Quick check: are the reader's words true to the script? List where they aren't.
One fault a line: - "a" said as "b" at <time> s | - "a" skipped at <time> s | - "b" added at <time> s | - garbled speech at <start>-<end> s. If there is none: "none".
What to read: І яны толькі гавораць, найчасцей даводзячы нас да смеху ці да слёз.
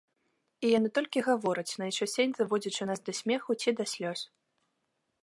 none